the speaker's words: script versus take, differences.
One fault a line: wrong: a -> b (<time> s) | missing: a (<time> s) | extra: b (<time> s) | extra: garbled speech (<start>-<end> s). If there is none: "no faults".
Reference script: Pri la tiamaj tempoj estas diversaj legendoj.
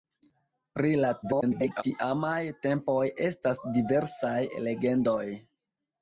extra: garbled speech (1.2-1.8 s)